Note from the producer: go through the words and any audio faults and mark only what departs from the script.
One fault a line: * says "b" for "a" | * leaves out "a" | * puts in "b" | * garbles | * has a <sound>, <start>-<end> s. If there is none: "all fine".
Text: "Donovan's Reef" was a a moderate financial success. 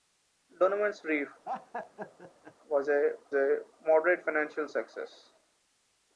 * has a laugh, 1.4-2.5 s